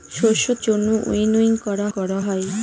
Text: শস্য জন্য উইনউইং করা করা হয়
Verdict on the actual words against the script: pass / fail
pass